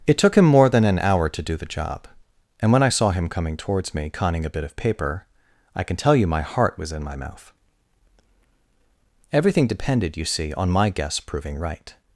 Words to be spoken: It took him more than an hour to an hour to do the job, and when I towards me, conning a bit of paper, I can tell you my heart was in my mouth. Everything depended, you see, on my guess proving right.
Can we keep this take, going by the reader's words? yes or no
no